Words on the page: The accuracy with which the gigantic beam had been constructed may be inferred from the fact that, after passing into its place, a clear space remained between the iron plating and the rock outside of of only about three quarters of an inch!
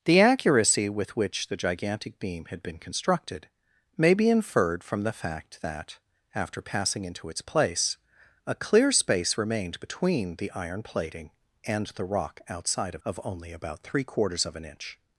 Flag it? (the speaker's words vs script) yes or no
no